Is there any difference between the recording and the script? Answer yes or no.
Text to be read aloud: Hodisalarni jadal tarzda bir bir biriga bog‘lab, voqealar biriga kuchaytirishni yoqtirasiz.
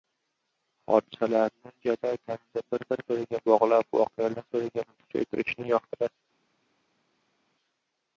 no